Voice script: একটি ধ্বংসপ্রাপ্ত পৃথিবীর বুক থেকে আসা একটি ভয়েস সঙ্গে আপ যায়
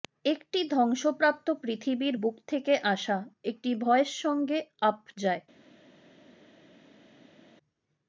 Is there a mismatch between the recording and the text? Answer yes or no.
no